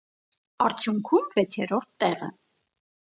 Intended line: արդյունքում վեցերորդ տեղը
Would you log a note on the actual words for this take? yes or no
no